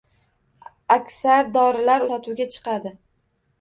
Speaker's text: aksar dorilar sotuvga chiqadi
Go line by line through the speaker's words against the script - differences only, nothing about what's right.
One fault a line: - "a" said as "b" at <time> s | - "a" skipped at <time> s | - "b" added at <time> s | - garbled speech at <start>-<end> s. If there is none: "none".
none